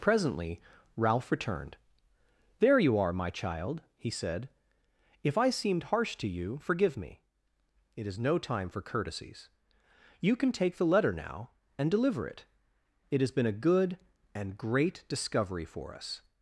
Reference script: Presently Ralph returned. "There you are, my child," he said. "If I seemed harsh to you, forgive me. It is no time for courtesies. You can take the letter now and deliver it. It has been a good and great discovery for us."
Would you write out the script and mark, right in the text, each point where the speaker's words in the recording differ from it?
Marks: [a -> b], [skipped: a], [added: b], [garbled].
Presently Ralph returned. "There you are, my child," he said. "If I seemed harsh to you, forgive me. It is no time for courtesies. You can take the letter now and deliver it. It has been a good and great discovery for us."